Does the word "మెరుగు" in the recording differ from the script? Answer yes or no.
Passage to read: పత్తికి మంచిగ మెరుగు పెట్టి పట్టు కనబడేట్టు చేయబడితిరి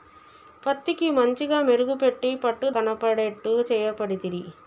no